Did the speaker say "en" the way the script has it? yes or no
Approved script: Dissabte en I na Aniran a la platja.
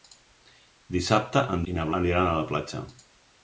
yes